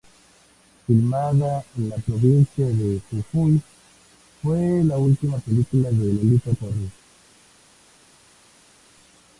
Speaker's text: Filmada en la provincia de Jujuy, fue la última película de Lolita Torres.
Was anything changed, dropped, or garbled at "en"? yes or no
no